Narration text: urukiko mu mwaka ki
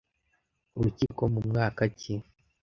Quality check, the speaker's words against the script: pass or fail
pass